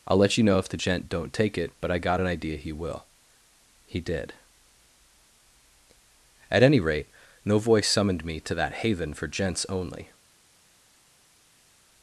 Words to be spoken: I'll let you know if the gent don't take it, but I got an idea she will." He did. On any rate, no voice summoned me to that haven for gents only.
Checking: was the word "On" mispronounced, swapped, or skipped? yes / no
yes